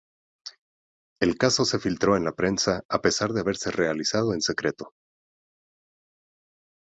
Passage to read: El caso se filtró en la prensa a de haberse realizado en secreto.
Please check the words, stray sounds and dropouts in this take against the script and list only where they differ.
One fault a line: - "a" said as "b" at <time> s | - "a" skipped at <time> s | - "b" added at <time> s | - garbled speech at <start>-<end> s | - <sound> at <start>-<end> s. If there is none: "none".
- "pesar" added at 3.0 s